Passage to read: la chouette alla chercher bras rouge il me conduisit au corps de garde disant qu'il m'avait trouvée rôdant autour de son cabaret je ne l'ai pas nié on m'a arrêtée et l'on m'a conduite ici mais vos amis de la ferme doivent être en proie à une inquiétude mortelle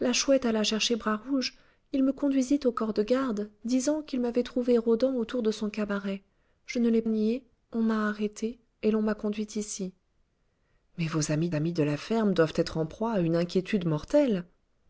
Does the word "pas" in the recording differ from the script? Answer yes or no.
yes